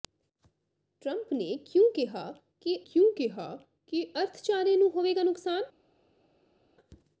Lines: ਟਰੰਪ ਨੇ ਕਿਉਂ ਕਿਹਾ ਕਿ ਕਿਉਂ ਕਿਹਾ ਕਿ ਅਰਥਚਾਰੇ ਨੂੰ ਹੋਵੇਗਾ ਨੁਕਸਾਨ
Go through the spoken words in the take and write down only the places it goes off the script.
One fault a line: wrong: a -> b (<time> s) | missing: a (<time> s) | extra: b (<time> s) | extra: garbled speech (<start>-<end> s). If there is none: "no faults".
no faults